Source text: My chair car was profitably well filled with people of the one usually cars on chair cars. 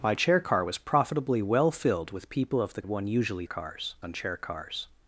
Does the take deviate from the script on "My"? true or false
false